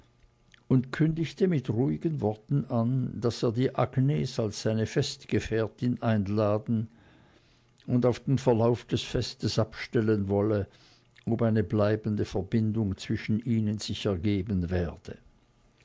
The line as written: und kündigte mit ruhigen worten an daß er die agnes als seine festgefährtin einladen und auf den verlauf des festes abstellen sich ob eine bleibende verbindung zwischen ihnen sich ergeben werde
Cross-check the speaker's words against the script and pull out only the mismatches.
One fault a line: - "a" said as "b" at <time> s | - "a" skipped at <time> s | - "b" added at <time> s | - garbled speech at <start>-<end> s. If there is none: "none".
- "sich" said as "wolle" at 10.3 s